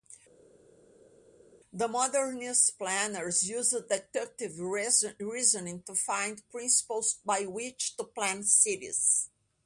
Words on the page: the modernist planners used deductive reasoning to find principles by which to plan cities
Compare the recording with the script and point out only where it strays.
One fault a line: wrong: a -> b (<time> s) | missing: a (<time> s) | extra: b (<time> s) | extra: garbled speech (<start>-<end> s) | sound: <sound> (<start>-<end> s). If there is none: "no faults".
no faults